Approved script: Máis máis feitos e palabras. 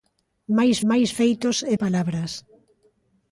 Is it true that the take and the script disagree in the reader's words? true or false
false